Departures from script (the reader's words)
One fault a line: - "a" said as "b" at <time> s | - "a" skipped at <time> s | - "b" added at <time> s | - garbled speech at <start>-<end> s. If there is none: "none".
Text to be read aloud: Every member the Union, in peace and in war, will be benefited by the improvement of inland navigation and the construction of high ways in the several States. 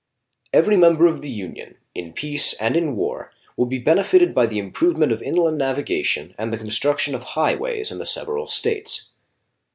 - "of" added at 1.1 s